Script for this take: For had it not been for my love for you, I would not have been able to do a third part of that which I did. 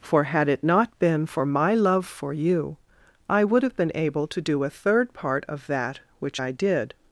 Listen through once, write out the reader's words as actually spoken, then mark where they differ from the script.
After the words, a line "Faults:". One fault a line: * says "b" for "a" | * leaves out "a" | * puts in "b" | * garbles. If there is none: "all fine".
For had it not been for my love for you, I would have been able to do a third part of that which I did.
Faults:
* leaves out "not"